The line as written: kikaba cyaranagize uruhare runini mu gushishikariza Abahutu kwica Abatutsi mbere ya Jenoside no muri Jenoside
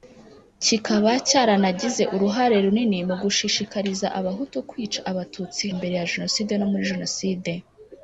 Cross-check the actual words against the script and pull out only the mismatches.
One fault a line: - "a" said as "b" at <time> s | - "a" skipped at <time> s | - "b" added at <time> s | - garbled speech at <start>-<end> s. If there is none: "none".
none